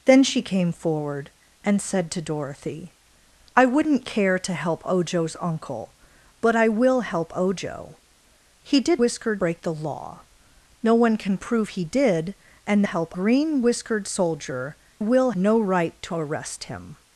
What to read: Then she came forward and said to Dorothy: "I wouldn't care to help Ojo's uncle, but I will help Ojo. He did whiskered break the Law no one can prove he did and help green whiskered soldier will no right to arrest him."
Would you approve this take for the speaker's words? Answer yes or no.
yes